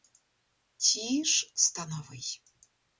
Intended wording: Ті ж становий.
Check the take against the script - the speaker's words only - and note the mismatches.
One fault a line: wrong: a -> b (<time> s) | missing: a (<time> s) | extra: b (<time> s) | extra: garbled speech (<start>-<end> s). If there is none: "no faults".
no faults